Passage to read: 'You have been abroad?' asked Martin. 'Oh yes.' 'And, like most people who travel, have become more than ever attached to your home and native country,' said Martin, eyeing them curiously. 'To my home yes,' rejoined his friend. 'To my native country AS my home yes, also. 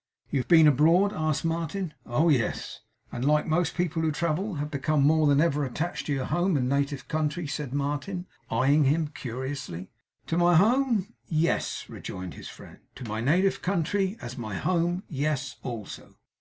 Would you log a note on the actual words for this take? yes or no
yes